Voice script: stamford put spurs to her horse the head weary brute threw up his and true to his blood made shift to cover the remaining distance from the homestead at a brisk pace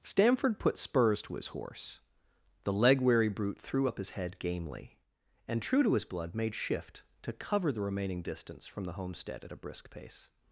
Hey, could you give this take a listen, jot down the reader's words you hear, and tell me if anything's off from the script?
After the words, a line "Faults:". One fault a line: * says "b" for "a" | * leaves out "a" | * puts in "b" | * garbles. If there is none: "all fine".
stamford put spurs to his horse the leg weary brute threw up his head gamely and true to his blood made shift to cover the remaining distance from the homestead at a brisk pace
Faults:
* says "his" for "her"
* says "leg" for "head"
* puts in "head gamely"